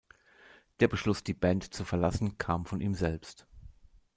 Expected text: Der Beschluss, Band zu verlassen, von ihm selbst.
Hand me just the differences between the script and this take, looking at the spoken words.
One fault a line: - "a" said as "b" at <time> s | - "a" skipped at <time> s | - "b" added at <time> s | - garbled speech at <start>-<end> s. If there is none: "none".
- "die" added at 1.2 s
- "kam" added at 2.4 s